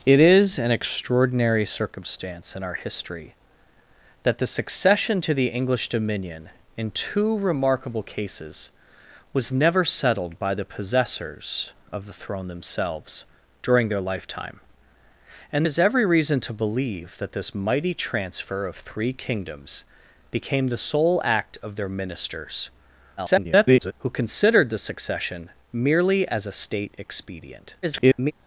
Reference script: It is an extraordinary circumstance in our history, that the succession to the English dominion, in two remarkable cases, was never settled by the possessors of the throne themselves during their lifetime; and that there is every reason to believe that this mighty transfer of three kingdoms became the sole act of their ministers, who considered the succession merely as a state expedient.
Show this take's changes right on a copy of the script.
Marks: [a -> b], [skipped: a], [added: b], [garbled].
It is an extraordinary circumstance in our history, that the succession to the English dominion, in two remarkable cases, was never settled by the possessors of the throne themselves during their lifetime; and [skipped: that there] is every reason to believe that this mighty transfer of three kingdoms became the sole act of their ministers, [garbled] who considered the succession merely as a state expedient. [garbled]